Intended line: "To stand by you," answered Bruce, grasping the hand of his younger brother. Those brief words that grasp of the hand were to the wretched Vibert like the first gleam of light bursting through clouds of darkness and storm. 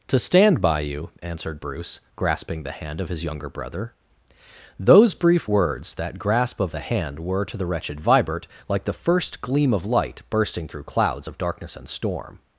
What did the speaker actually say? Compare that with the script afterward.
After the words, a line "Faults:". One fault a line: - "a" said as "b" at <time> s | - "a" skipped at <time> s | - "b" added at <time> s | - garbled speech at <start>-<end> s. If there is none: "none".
"To stand by you," answered Bruce, grasping the hand of his younger brother. Those brief words that grasp of the hand were to the wretched Vibert like the first gleam of light bursting through clouds of darkness and storm.
Faults:
none